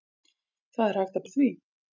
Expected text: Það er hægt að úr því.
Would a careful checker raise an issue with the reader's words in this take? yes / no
no